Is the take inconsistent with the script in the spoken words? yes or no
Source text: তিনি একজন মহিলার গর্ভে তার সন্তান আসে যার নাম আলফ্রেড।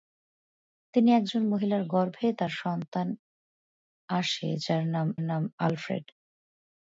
yes